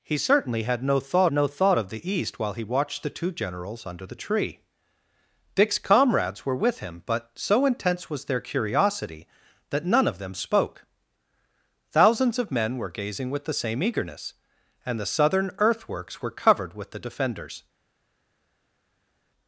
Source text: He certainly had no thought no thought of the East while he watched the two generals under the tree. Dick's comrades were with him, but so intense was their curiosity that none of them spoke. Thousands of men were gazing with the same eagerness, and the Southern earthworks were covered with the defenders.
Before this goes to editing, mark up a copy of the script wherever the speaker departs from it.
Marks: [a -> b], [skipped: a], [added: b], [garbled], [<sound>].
He certainly had no thought no thought of the East while he watched the two generals under the tree. Dick's comrades were with him, but so intense was their curiosity that none of them spoke. Thousands of men were gazing with the same eagerness, and the Southern earthworks were covered with the defenders.